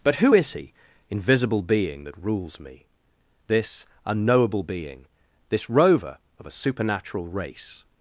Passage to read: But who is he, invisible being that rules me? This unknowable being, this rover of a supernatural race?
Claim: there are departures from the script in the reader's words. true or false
false